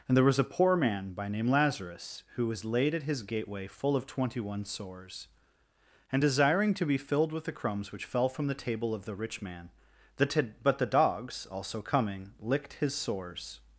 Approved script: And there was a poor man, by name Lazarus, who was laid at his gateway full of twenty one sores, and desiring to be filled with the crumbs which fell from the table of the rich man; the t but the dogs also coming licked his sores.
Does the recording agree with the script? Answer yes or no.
yes